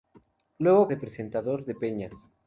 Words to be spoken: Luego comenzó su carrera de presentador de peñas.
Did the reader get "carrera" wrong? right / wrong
wrong